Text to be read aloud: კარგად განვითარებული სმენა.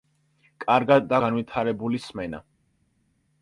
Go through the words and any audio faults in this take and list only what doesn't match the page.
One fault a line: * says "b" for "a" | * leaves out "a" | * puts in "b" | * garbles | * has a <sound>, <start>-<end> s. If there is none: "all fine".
all fine